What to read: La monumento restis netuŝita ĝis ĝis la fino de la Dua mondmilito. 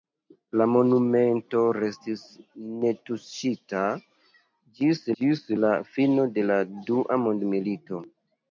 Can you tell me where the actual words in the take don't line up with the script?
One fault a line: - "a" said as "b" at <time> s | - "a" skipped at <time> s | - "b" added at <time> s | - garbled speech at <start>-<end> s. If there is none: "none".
none